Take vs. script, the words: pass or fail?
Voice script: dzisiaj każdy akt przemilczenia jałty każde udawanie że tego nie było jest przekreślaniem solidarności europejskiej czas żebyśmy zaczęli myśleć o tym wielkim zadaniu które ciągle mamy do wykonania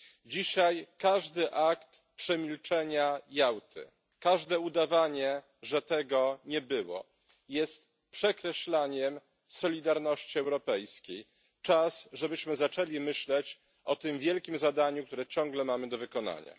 pass